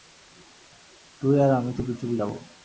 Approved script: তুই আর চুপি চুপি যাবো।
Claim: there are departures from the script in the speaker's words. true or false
true